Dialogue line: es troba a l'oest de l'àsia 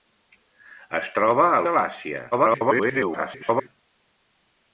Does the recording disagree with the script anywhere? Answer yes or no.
yes